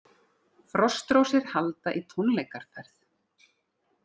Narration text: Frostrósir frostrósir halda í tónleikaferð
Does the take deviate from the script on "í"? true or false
false